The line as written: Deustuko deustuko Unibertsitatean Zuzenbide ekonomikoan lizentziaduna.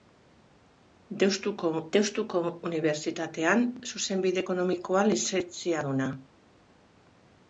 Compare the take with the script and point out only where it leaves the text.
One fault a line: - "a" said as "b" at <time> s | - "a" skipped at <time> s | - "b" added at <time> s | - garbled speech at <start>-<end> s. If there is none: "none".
none